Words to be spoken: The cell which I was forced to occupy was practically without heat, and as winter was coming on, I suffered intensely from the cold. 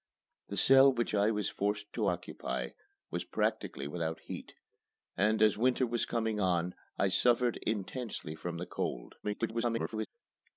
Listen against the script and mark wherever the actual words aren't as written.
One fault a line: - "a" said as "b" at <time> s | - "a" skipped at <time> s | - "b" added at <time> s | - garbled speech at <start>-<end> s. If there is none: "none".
- garbled speech at 9.2-10.1 s